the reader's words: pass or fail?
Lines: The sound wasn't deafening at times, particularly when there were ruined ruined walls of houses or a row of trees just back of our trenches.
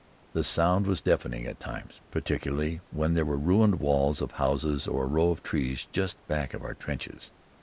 fail